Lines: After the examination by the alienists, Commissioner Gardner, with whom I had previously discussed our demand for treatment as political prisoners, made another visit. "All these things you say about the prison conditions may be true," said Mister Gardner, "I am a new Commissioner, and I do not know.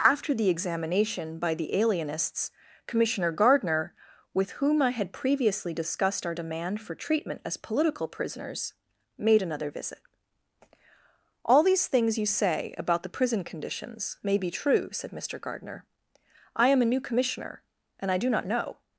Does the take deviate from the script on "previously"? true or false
false